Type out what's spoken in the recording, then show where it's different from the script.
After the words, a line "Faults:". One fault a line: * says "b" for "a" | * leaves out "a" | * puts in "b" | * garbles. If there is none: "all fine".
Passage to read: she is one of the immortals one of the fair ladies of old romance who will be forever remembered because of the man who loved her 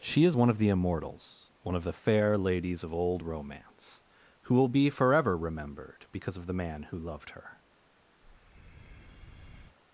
she is one of the immortals one of the fair ladies of old romance who will be forever remembered because of the man who loved her
Faults:
all fine